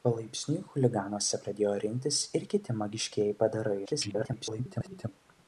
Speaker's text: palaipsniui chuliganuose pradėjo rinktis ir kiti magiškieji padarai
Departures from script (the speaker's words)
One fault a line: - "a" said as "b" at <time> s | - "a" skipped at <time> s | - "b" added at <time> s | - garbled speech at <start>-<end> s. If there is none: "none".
- garbled speech at 3.8-5.1 s